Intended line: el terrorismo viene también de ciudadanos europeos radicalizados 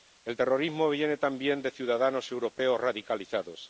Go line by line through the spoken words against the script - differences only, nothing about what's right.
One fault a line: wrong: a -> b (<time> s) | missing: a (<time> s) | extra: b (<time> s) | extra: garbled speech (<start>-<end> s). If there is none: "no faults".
no faults